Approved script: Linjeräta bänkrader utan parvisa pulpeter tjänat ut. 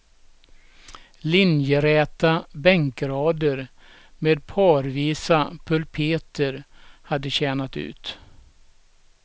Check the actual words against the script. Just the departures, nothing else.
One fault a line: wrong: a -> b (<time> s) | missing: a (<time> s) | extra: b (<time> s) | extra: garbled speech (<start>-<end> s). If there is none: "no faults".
wrong: utan -> med (4.2 s)
extra: hade (7.0 s)